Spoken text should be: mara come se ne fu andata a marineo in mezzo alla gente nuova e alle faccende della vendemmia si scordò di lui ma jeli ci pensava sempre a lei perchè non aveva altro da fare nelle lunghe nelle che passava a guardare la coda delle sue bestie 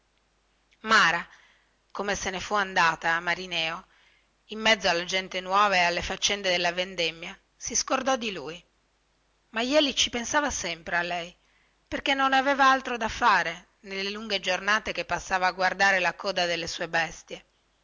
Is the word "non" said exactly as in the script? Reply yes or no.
yes